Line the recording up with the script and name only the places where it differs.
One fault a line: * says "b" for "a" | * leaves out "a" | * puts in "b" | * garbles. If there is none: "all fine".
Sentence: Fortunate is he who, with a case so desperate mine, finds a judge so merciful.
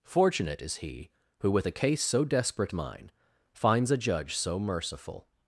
all fine